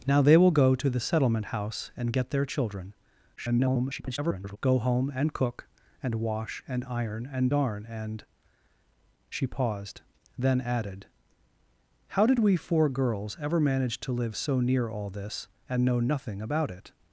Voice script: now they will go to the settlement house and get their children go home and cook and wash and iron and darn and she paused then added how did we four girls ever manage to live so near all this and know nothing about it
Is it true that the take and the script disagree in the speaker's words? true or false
true